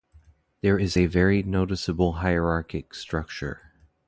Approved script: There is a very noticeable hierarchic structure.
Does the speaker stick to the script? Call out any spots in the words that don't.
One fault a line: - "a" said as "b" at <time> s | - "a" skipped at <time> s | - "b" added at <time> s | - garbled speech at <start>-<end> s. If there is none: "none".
none